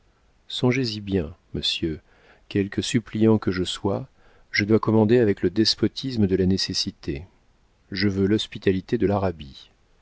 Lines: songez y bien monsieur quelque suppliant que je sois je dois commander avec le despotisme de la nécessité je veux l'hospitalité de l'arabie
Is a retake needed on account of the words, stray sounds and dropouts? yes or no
no